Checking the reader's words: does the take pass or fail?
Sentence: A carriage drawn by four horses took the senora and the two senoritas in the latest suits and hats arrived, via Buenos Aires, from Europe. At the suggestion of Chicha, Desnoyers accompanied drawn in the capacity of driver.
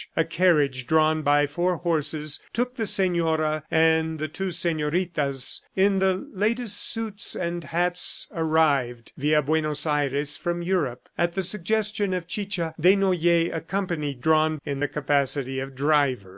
pass